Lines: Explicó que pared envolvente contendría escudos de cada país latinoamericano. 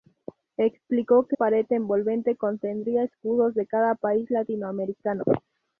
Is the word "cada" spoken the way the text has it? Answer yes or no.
yes